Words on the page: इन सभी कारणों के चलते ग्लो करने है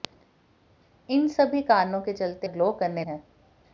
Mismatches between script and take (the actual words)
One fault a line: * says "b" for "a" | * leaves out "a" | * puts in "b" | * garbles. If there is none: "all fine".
all fine